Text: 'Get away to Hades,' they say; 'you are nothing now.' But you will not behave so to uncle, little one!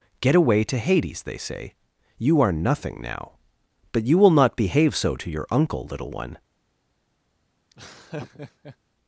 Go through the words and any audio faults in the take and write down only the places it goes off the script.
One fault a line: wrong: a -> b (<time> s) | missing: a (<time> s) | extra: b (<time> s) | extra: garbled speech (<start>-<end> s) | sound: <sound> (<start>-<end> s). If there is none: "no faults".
extra: your (5.3 s)
sound: laugh (7.7-8.8 s)